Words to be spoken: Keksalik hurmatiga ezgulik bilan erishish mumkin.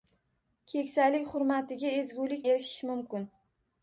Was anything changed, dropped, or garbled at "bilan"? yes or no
yes